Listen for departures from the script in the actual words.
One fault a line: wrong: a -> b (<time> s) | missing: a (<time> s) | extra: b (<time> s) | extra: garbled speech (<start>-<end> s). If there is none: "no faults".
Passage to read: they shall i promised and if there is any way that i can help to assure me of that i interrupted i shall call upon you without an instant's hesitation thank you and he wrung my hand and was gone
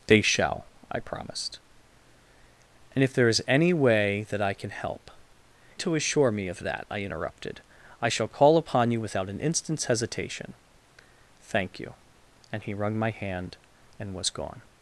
no faults